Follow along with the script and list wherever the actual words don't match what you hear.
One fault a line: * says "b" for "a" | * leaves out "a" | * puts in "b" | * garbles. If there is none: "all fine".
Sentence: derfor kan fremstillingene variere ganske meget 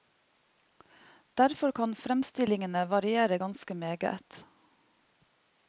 all fine